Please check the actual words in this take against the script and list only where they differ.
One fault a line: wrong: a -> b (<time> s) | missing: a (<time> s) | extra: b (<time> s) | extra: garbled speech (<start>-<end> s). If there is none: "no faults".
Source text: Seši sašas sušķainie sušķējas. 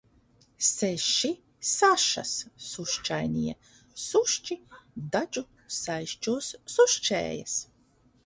extra: sušķi dadžu saišķos (4.0 s)